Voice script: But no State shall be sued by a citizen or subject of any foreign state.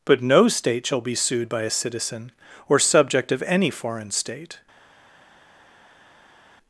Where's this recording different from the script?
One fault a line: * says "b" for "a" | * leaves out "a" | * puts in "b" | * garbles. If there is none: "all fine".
all fine